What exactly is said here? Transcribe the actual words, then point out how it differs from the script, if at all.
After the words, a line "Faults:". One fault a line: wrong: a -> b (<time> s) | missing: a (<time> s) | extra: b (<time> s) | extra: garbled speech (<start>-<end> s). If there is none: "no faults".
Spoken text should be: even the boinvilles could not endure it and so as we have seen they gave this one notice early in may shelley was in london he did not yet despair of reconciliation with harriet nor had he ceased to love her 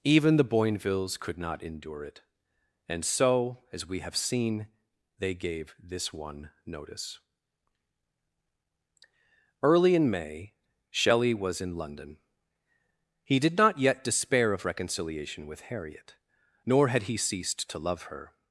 even the boinvilles could not endure it and so as we have seen they gave this one notice early in may shelley was in london he did not yet despair of reconciliation with harriet nor had he ceased to love her
Faults:
no faults